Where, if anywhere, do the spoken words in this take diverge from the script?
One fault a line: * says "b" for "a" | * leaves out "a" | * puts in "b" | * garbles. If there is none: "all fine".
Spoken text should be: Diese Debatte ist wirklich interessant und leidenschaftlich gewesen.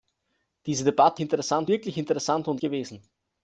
* says "interessant" for "ist"
* leaves out "leidenschaftlich"